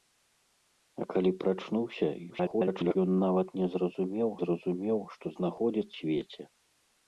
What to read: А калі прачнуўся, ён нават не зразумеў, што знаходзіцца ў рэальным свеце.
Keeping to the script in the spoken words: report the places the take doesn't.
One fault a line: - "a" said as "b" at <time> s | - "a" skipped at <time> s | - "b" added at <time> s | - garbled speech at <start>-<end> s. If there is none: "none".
- garbled speech at 2.3-3.0 s
- "зразумеў" added at 4.4 s
- "ў рэальным" skipped at 6.0 s